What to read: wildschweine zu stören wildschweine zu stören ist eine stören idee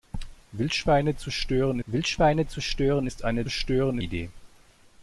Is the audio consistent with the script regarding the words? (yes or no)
yes